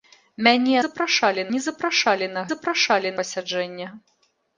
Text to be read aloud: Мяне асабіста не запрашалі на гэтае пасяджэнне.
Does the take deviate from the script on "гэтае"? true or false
true